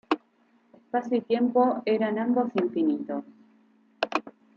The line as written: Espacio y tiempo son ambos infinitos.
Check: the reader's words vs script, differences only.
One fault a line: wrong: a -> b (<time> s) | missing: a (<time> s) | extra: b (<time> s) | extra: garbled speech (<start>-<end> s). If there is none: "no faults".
wrong: son -> eran (1.8 s)